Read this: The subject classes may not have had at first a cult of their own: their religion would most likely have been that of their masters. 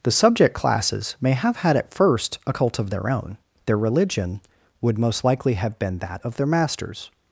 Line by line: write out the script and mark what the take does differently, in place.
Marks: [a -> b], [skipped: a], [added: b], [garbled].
The subject classes may [skipped: not] have had at first a cult of their own: their religion would most likely have been that of their masters.